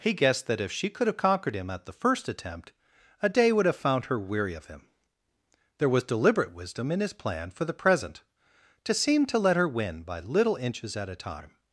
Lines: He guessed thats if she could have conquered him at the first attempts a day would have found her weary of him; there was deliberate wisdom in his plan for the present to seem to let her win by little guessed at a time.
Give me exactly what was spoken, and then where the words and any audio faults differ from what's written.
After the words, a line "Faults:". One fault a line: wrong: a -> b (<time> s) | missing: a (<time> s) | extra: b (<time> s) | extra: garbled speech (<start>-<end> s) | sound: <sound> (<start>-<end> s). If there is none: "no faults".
He guessed that if she could have conquered him at the first attempt a day would have found her weary of him; there was deliberate wisdom in his plan for the present to seem to let her win by little inches at a time.
Faults:
wrong: thats -> that (0.5 s)
wrong: attempts -> attempt (2.3 s)
wrong: guessed -> inches (10.5 s)